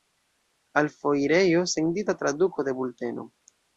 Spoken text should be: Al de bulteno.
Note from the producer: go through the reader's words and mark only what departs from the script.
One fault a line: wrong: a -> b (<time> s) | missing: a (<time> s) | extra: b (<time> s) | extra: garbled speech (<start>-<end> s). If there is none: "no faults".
extra: foirejo sendita traduko (0.9 s)